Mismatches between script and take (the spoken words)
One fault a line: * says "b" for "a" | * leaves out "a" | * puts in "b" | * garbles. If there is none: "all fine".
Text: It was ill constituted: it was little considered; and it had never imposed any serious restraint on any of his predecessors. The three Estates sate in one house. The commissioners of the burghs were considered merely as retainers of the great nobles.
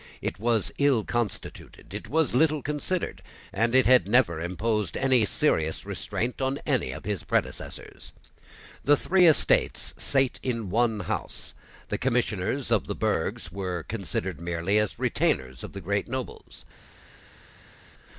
all fine